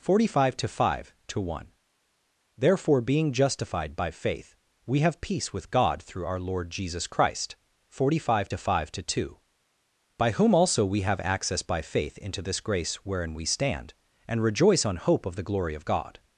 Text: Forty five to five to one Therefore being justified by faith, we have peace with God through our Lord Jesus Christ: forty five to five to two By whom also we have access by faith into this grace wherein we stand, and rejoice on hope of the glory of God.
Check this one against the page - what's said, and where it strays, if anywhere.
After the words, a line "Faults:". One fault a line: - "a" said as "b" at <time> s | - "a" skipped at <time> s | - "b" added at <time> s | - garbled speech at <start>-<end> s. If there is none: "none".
Forty five to five to one Therefore being justified by faith, we have peace with God through our Lord Jesus Christ: forty five to five to two By whom also we have access by faith into this grace wherein we stand, and rejoice on hope of the glory of God.
Faults:
none